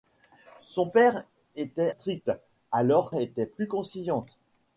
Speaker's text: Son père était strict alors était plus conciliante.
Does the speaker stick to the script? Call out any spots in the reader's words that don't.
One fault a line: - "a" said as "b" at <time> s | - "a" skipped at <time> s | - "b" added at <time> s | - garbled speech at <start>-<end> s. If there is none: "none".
none